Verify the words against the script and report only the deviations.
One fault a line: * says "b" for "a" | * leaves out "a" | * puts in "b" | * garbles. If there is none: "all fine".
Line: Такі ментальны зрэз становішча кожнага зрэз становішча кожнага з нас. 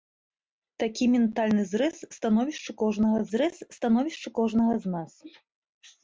all fine